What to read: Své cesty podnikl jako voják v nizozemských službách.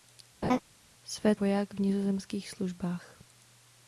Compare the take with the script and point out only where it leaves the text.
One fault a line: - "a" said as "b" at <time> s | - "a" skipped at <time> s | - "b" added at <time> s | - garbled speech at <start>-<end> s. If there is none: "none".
- "cesty podnikl jako" skipped at 1.4 s